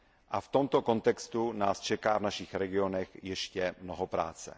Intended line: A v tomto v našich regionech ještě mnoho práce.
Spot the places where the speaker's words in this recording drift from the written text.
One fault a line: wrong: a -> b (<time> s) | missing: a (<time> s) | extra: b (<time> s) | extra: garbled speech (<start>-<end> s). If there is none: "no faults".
extra: kontextu nás čeká (0.8 s)